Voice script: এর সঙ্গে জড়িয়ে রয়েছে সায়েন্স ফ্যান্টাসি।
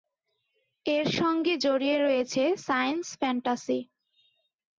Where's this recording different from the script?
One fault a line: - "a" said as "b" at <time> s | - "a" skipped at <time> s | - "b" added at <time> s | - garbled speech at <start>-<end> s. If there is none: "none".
none